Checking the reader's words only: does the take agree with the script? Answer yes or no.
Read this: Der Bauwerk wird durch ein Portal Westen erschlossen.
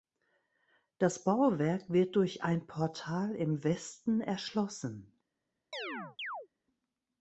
no